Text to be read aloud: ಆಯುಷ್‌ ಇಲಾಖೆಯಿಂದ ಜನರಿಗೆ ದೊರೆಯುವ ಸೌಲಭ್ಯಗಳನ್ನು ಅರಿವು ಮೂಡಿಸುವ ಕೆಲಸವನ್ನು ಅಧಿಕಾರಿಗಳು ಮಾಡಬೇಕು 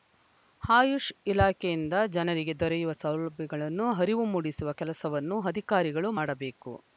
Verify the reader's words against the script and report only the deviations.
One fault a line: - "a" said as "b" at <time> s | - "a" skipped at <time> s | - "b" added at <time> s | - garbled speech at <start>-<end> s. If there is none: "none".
none